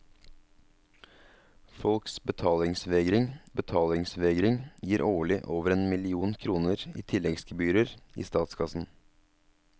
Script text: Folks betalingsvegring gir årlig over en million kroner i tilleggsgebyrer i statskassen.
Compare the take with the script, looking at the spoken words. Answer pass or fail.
fail